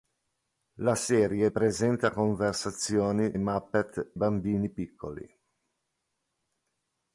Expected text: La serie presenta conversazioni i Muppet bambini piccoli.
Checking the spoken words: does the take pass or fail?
pass